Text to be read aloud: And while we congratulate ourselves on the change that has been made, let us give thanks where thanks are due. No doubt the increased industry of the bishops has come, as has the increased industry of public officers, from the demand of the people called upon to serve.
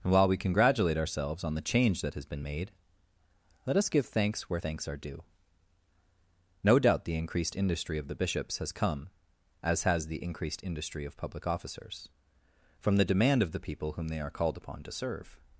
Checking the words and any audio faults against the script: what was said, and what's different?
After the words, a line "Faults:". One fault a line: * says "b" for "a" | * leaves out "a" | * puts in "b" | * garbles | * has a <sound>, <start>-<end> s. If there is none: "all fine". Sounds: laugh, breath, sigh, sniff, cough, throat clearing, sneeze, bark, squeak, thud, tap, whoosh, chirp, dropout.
And while we congratulate ourselves on the change that has been made, let us give thanks where thanks are due. No doubt the increased industry of the bishops has come, as has the increased industry of public officers, from the demand of the people whom they are called upon to serve.
Faults:
* puts in "whom they are"